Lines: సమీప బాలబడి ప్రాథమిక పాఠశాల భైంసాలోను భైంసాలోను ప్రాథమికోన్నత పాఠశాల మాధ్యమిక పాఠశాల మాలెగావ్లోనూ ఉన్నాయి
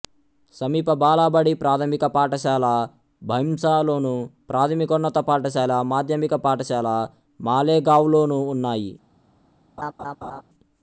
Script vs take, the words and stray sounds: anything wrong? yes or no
yes